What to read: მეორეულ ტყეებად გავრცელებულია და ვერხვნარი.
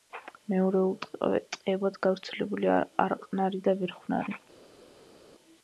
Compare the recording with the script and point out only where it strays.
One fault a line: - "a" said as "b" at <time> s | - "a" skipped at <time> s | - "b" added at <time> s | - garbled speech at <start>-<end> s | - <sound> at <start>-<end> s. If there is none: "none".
- "არყნარი" added at 3.1 s